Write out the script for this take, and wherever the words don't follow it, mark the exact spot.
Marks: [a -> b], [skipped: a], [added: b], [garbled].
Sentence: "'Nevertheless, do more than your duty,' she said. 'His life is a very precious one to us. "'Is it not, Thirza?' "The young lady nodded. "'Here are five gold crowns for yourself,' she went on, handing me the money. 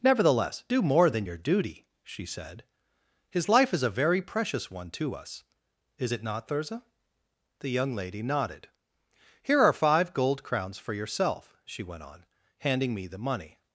"'Nevertheless, do more than your duty,' she said. 'His life is a very precious one to us. "'Is it not, Thirza?' "The young lady nodded. "'Here are five gold crowns for yourself,' she went on, handing me the money.